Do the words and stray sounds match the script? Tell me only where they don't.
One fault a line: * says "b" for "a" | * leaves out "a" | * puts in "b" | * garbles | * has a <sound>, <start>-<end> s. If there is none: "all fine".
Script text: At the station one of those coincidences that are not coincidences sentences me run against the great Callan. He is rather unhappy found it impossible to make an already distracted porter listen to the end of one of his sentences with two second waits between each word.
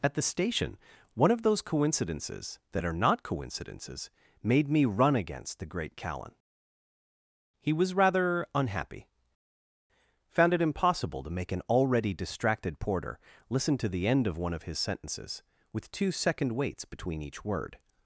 * says "made" for "sentences"
* says "was" for "is"